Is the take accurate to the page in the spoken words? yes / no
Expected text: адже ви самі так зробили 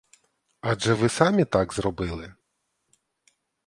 yes